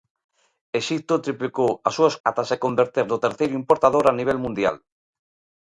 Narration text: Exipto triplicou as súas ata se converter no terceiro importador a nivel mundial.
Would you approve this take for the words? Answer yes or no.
yes